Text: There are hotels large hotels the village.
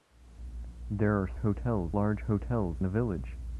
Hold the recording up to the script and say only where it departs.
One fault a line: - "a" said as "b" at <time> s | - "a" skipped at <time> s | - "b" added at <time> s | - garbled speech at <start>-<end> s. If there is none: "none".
none